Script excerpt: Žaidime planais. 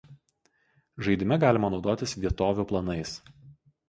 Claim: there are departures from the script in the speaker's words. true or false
true